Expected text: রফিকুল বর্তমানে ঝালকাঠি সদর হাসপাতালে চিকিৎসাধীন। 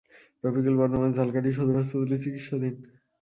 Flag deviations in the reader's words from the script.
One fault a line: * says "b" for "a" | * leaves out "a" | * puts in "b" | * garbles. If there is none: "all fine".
all fine